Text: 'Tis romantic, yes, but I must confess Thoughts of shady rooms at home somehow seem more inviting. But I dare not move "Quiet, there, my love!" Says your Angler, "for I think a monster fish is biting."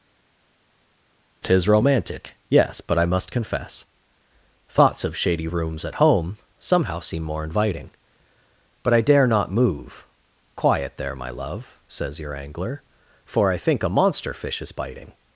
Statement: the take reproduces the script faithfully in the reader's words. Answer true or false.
true